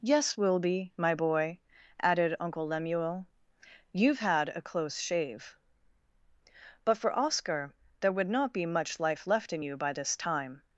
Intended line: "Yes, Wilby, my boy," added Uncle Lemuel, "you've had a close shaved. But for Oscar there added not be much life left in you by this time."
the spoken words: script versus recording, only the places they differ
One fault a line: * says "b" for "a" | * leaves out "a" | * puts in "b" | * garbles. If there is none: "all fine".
* says "shave" for "shaved"
* says "would" for "added"